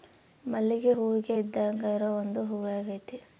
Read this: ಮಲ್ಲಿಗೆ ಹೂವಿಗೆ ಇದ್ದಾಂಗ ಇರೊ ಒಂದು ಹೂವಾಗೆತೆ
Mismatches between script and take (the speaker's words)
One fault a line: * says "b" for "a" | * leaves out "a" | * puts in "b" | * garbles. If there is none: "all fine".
all fine